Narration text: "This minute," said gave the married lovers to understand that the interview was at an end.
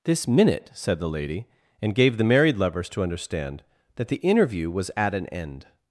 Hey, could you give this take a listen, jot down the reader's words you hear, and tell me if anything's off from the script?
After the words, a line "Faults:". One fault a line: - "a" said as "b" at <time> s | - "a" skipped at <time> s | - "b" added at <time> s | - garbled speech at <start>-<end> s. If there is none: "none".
"This minute," said the lady, and gave the married lovers to understand that the interview was at an end.
Faults:
- "the lady and" added at 1.0 s